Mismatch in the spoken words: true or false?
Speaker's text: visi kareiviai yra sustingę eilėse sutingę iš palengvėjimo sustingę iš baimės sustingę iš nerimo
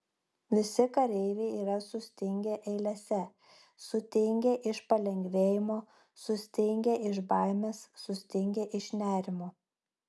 false